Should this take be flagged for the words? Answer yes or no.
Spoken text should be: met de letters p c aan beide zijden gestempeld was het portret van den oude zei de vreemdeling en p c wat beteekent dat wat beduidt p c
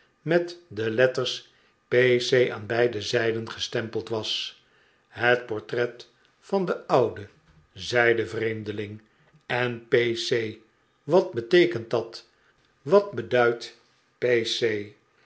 no